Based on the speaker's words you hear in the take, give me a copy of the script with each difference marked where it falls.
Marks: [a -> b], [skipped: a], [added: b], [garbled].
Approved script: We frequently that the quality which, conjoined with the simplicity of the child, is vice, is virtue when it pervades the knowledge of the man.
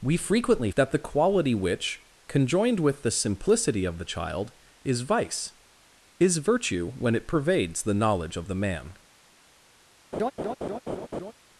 We frequently that the quality which, conjoined with the simplicity of the child, is vice, is virtue when it pervades the knowledge of the man.